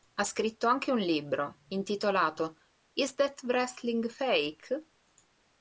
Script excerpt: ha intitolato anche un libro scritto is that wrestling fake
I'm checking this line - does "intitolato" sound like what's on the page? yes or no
no